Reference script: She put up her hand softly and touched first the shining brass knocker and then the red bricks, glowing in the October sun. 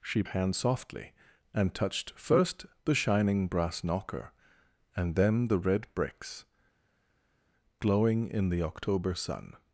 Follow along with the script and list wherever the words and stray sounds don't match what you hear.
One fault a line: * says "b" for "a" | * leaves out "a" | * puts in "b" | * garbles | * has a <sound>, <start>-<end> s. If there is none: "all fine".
* leaves out "put up her"